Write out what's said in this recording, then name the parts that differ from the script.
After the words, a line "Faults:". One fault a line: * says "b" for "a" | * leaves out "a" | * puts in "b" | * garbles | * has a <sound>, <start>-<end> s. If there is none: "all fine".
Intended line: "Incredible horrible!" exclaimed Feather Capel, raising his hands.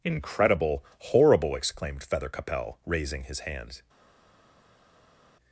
"Incredible horrible!" exclaimed Feather Capel, raising his hands.
Faults:
all fine